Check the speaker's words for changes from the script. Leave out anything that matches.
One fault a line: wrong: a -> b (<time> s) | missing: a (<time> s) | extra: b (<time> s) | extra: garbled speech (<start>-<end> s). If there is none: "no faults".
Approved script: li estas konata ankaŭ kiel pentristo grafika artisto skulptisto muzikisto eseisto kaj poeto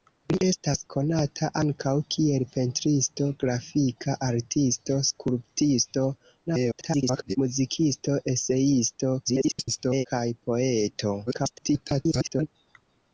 extra: garbled speech (6.5-7.4 s)
extra: garbled speech (9.2-10.1 s)
extra: garbled speech (11.3-12.5 s)